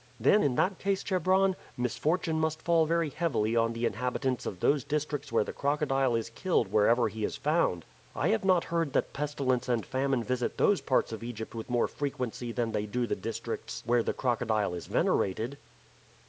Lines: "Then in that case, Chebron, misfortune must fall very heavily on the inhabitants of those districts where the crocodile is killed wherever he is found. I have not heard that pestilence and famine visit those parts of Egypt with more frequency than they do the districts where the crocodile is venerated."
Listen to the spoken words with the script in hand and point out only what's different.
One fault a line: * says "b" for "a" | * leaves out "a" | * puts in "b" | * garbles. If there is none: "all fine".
all fine